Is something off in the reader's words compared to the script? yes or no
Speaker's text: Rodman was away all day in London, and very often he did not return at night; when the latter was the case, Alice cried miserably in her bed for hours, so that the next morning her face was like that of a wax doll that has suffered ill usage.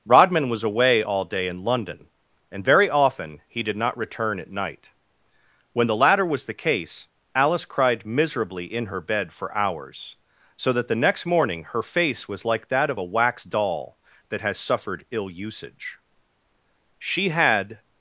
yes